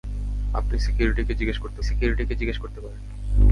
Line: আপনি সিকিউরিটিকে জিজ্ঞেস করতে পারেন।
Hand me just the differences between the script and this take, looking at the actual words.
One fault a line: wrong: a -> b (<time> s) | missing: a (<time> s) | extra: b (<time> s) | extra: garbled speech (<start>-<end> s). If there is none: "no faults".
extra: সিকিউরিটিকে জিজ্ঞেস করতে (1.8 s)